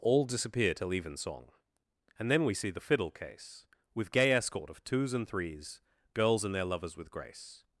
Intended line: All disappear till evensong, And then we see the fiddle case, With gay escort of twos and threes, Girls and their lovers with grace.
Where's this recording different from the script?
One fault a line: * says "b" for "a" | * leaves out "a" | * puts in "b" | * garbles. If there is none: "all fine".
all fine